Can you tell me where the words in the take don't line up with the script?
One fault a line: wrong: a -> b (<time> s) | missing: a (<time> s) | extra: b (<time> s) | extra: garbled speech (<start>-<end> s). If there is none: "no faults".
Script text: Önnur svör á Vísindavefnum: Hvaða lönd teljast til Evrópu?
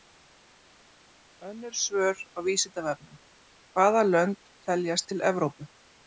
no faults